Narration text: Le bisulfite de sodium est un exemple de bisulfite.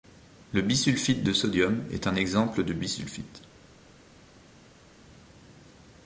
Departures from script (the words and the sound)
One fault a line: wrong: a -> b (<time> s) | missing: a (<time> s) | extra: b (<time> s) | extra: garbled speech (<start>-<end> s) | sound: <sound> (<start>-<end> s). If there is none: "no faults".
no faults